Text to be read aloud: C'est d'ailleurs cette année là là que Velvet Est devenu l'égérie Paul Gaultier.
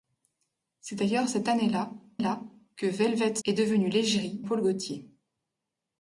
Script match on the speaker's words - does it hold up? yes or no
yes